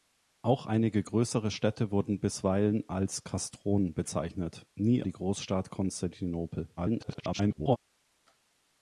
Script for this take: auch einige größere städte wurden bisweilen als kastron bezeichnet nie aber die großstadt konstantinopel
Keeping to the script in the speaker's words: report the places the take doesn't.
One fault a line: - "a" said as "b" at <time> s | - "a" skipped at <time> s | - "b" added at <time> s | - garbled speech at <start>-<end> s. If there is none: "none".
- "aber" skipped at 5.0 s
- garbled speech at 6.8-7.8 s